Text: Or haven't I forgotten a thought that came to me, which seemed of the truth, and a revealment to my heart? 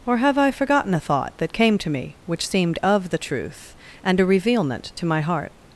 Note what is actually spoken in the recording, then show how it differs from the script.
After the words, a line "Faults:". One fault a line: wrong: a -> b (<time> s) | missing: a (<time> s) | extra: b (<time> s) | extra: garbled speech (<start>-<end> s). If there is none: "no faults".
Or have I forgotten a thought that came to me, which seemed of the truth, and a revealment to my heart?
Faults:
wrong: haven't -> have (0.2 s)